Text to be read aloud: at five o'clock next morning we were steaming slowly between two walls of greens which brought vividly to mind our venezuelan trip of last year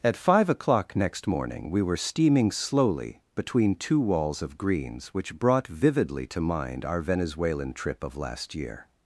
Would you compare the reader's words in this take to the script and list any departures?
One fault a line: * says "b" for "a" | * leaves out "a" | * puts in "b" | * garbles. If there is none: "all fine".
all fine